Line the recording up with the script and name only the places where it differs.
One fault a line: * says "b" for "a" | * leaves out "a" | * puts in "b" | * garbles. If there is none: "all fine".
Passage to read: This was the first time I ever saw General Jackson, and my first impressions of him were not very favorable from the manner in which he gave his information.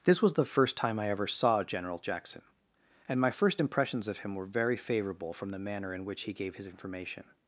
* leaves out "not"